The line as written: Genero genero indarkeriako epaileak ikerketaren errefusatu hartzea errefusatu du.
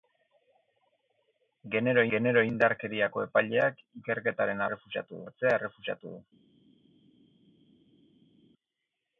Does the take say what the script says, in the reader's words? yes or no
yes